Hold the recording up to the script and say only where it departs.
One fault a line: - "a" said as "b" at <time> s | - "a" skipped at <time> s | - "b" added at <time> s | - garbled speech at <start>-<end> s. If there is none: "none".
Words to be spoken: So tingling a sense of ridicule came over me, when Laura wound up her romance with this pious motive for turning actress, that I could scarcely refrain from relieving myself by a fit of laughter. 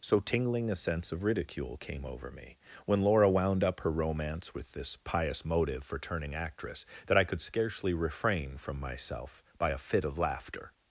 - "relieving" skipped at 8.8 s